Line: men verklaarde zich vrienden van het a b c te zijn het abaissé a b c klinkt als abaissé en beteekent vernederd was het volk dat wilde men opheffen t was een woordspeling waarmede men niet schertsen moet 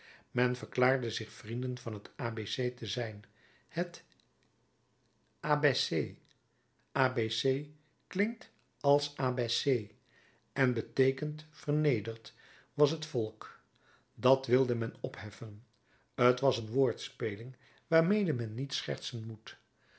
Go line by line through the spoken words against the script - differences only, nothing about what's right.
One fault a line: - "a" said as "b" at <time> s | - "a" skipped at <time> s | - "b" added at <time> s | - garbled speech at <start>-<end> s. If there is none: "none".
none